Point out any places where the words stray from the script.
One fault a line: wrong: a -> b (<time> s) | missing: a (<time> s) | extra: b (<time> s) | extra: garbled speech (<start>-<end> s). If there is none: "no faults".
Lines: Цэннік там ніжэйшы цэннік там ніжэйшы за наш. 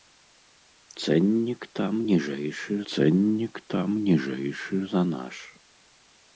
no faults